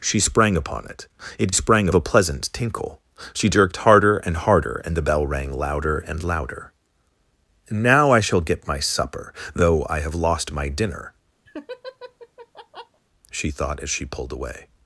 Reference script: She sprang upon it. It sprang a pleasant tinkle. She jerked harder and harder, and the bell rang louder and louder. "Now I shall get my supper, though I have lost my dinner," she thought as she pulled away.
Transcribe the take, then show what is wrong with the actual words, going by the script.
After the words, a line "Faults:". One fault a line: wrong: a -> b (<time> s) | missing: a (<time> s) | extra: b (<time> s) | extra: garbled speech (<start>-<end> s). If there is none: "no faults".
She sprang upon it. It sprang a pleasant tinkle. She jerked harder and harder, and the bell rang louder and louder. "Now I shall get my supper, though I have lost my dinner," she thought as she pulled away.
Faults:
no faults